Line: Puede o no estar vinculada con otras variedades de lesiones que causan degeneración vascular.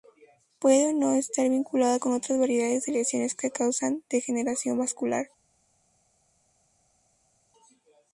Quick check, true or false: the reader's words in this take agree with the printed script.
true